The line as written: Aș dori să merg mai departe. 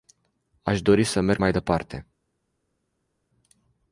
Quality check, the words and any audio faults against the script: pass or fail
pass